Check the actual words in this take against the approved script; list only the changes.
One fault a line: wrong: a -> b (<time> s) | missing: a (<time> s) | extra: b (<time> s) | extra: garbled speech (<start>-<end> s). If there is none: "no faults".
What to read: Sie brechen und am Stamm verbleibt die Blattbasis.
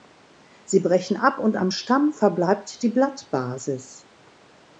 extra: ab (1.1 s)